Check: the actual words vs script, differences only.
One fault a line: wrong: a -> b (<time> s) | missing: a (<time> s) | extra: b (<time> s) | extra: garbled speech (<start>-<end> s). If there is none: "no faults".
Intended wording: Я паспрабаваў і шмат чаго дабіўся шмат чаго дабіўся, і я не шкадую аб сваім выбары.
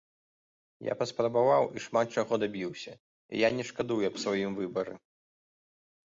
missing: шмат чаго дабіўся (2.9 s)